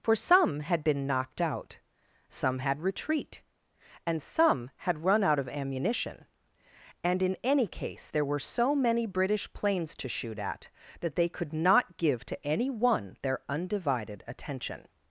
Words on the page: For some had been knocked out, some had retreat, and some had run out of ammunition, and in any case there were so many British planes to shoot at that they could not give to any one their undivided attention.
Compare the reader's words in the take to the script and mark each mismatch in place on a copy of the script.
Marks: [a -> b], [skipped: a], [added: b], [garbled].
For some had been knocked out, some had retreat, and some had run out of ammunition, and in any case there were so many British planes to shoot at that they could not give to any one their undivided attention.